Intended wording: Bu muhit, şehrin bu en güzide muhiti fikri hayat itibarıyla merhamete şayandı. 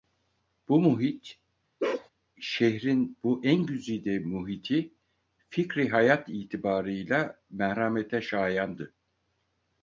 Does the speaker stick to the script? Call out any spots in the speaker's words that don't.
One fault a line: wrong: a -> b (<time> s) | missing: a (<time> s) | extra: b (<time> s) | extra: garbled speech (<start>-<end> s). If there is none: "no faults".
no faults